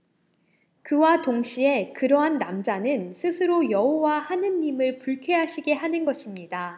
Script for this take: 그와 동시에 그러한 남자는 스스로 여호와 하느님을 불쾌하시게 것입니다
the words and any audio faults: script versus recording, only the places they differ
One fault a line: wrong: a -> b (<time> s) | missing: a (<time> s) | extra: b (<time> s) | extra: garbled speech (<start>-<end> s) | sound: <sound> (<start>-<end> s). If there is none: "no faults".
extra: 하는 (5.7 s)